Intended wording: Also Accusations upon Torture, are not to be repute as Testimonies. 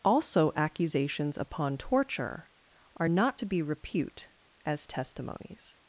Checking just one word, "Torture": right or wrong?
right